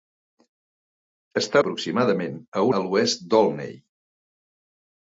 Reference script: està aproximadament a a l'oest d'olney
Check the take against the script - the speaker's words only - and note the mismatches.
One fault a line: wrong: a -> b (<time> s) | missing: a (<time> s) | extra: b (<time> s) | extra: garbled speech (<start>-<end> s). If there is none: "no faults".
no faults